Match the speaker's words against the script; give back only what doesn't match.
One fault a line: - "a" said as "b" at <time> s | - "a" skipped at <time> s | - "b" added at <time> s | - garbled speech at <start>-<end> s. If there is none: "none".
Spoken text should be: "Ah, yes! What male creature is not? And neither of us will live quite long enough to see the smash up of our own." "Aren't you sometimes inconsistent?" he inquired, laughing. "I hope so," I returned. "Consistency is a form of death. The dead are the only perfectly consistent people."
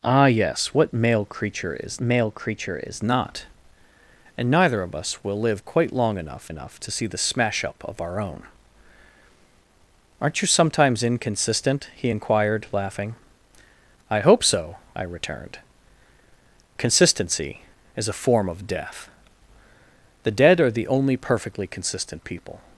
- "male creature is" added at 2.0 s
- "enough" added at 6.5 s